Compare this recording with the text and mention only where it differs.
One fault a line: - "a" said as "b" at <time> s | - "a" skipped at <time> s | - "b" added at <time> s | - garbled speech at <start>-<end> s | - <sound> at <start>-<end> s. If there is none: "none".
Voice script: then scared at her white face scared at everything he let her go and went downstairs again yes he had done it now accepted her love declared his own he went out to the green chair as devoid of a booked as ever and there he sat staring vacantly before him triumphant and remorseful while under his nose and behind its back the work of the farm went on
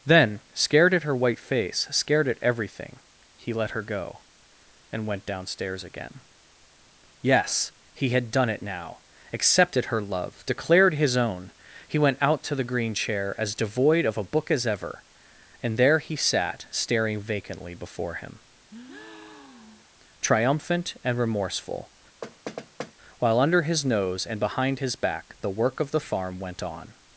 - "booked" said as "book" at 14.2 s
- breath at 18.7-19.9 s
- thud at 22.2-22.9 s
- "its" said as "his" at 24.8 s